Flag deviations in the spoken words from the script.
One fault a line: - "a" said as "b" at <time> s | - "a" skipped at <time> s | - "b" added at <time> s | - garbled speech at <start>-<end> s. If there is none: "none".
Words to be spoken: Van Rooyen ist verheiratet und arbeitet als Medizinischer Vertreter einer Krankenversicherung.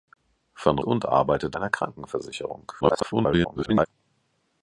- "Rooyen ist verheiratet" skipped at 0.8 s
- "als Medizinischer Vertreter" skipped at 1.6 s
- garbled speech at 2.8-3.9 s